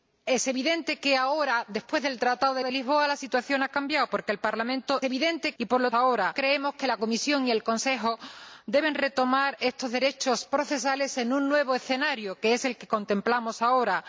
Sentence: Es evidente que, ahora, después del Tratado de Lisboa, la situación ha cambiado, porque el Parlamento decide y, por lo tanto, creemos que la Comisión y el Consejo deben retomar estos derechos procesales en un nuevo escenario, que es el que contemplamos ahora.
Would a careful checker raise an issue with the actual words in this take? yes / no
yes